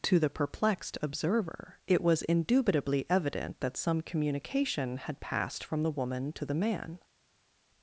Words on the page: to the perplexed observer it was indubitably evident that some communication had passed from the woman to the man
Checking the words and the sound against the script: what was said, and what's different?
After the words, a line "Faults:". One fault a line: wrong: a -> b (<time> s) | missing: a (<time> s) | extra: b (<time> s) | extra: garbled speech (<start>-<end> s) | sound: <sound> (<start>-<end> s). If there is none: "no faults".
to the perplexed observer it was indubitably evident that some communication had passed from the woman to the man
Faults:
no faults